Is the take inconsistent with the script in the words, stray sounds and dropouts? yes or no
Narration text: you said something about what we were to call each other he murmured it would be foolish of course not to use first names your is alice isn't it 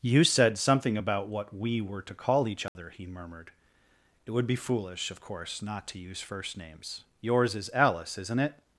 yes